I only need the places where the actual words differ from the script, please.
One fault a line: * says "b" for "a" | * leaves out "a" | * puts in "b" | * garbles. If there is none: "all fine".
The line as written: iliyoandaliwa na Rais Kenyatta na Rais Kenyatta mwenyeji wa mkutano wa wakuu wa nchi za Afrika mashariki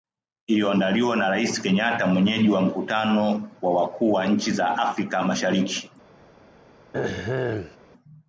* leaves out "na Rais Kenyatta"